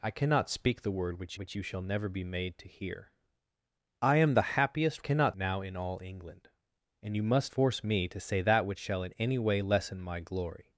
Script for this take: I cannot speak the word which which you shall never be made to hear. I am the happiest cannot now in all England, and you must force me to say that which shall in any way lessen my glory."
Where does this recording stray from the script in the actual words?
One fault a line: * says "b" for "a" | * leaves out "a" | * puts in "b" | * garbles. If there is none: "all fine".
all fine